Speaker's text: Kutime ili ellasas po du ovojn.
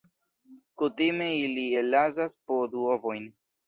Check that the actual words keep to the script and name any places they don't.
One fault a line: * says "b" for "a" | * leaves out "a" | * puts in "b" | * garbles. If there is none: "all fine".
all fine